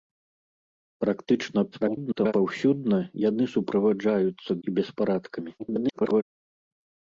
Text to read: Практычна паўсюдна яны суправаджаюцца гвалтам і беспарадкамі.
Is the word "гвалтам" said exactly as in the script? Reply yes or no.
no